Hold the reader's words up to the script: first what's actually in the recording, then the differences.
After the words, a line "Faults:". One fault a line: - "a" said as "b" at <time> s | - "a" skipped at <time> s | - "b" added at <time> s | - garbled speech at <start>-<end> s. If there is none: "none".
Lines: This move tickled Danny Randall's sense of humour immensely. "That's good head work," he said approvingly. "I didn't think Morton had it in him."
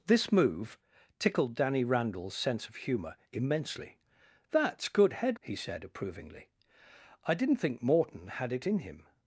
This move tickled Danny Randall's sense of humour immensely. "That's good head," he said approvingly. "I didn't think Morton had it in him."
Faults:
- "work" skipped at 5.4 s